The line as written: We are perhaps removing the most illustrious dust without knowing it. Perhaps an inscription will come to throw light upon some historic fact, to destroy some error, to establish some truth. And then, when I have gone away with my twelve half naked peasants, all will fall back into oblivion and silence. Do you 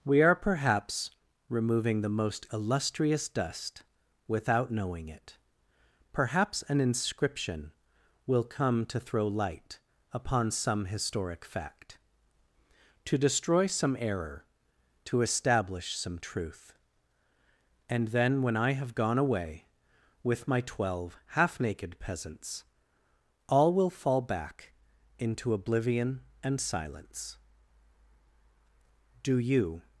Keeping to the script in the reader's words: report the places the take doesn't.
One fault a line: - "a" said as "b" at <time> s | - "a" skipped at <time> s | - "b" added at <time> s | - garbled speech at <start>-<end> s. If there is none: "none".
none